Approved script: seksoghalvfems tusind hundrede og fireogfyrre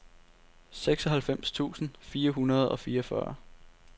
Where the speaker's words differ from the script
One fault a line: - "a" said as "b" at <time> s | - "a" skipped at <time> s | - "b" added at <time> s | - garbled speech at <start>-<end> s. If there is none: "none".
- "fire" added at 2.0 s